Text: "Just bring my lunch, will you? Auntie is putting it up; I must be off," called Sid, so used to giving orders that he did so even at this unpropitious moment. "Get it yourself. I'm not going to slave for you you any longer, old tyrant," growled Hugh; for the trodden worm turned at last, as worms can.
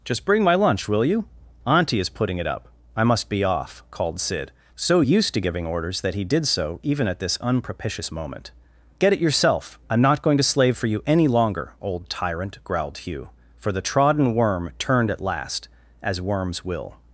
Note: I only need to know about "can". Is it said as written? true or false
false